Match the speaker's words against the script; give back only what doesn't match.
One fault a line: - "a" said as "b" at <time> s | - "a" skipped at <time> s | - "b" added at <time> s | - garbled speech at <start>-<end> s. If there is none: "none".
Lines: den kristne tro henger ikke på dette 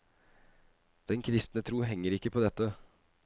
none